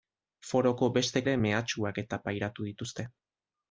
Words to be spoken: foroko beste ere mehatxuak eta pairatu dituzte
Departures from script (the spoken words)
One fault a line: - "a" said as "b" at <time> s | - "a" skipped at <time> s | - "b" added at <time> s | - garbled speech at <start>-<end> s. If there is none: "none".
none